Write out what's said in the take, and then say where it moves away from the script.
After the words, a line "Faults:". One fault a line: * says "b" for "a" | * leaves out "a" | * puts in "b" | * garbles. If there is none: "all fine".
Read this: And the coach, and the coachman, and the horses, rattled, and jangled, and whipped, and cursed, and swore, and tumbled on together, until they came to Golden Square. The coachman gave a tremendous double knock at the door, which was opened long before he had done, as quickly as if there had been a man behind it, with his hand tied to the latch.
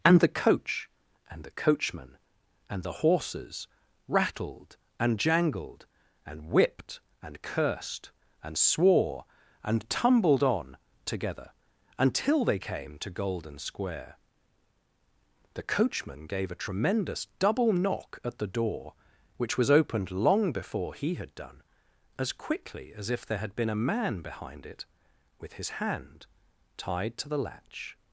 And the coach, and the coachman, and the horses, rattled, and jangled, and whipped, and cursed, and swore, and tumbled on together, until they came to Golden Square. The coachman gave a tremendous double knock at the door, which was opened long before he had done, as quickly as if there had been a man behind it, with his hand tied to the latch.
Faults:
all fine